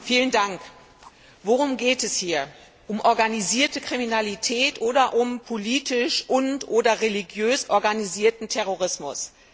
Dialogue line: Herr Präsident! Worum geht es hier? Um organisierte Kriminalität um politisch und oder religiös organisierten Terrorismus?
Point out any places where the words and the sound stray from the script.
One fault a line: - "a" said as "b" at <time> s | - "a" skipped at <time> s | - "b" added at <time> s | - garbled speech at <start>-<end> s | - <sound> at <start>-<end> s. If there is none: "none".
- "oder" added at 4.8 s